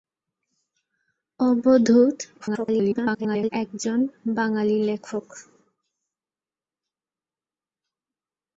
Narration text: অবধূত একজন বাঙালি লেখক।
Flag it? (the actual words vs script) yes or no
yes